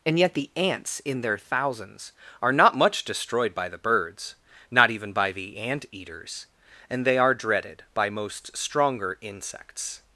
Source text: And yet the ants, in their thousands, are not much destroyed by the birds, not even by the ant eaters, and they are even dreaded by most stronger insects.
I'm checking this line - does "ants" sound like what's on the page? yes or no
yes